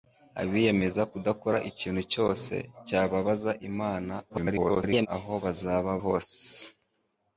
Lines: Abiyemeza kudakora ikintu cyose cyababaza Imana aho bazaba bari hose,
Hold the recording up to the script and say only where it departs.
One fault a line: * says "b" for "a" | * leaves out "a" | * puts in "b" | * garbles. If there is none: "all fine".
* garbles
* leaves out "bari"